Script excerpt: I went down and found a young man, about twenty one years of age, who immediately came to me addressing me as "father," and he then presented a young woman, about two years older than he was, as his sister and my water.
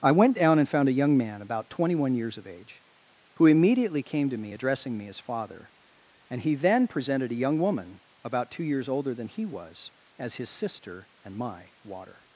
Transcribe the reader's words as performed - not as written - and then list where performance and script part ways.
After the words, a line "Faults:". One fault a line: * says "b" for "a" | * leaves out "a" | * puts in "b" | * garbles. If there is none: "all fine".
I went down and found a young man, about twenty one years of age, who immediately came to me addressing me as "father," and he then presented a young woman, about two years older than he was, as his sister and my water.
Faults:
all fine